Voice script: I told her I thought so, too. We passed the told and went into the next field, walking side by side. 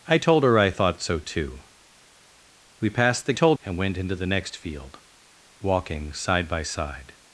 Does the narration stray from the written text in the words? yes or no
no